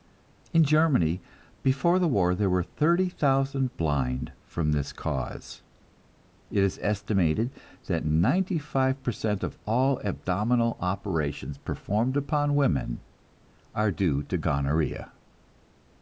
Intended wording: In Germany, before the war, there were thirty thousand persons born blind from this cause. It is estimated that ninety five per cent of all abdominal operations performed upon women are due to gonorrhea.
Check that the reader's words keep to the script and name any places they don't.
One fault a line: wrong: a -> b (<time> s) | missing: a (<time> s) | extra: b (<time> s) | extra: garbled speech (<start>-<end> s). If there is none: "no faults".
missing: persons born (3.8 s)